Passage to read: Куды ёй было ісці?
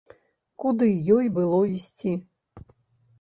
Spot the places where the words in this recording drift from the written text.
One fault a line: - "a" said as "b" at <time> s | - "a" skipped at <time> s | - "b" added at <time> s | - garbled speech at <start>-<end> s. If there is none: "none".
none